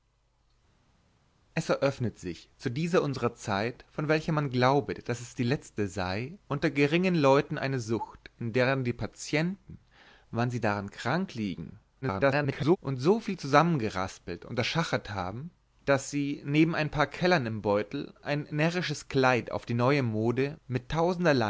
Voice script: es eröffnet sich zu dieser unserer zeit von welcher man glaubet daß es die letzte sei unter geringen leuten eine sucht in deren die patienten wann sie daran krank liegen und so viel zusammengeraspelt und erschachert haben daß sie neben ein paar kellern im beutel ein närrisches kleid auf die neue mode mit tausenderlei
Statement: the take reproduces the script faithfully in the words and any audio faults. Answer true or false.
false